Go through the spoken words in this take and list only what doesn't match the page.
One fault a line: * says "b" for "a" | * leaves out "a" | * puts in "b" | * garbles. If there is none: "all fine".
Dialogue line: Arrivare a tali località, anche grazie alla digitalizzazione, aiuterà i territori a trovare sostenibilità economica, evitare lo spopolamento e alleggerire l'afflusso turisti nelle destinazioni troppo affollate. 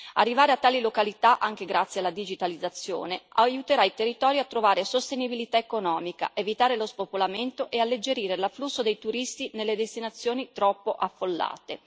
* puts in "dei"